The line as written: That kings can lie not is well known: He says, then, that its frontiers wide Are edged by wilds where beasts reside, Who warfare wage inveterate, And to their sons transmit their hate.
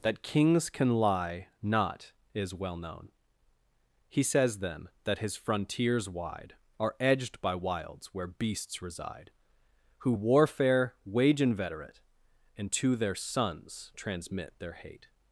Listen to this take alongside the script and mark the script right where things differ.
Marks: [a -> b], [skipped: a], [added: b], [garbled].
That kings can lie not is well known: He says, then, that [its -> his] frontiers wide Are edged by wilds where beasts reside, Who warfare wage inveterate, And to their sons transmit their hate.